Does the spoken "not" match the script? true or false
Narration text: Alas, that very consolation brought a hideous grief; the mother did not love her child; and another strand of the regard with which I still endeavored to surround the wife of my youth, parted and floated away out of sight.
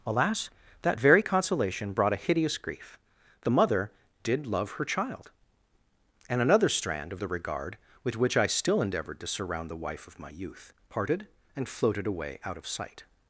false